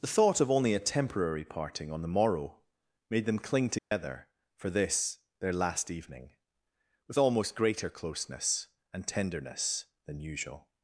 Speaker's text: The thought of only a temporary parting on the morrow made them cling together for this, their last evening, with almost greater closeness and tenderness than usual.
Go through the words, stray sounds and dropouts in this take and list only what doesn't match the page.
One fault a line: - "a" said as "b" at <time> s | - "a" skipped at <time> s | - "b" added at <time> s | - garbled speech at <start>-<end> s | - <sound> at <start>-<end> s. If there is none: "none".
- dropout at 3.8-3.9 s